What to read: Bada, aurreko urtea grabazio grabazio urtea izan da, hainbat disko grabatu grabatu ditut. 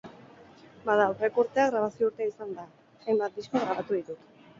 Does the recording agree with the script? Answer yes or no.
no